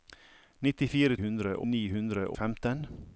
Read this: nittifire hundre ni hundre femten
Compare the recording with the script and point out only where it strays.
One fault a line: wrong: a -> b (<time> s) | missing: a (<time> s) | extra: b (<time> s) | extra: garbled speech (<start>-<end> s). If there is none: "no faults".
no faults